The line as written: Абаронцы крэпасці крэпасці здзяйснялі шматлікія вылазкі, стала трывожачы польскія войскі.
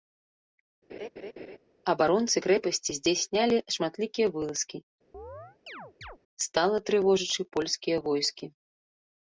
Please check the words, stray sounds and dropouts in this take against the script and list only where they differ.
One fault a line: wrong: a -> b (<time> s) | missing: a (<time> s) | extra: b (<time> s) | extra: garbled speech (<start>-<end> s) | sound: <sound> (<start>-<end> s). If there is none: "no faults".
sound: laugh (0.9-1.6 s)
missing: крэпасці (2.9 s)
sound: chirp (5.1-6.2 s)